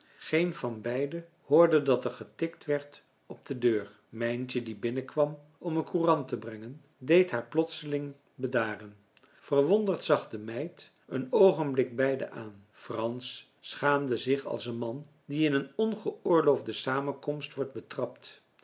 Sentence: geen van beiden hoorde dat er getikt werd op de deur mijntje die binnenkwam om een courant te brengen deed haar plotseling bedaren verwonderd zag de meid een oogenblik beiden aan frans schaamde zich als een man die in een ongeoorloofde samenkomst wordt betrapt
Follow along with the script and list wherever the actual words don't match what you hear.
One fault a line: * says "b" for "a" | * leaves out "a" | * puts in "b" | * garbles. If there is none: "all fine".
all fine